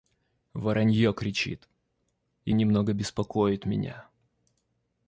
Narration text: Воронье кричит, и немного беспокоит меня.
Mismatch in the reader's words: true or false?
false